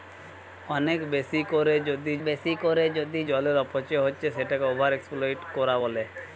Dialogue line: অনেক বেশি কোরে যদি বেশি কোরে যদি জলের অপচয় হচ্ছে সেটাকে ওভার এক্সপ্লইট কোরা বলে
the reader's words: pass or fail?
pass